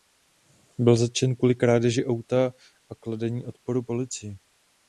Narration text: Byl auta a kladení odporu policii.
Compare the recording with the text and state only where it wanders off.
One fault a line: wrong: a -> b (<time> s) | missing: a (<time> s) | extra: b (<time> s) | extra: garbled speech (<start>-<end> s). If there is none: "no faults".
extra: zatčen kvůli krádeži (0.9 s)